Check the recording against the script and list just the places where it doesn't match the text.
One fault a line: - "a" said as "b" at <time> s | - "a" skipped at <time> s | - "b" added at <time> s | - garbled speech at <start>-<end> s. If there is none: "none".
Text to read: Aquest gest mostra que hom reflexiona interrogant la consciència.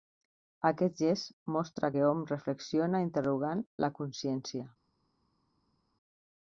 none